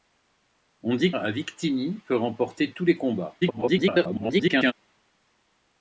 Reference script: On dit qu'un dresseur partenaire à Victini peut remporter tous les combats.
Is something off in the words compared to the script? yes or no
yes